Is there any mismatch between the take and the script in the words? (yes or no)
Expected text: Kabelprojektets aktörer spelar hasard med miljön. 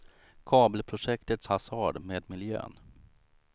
yes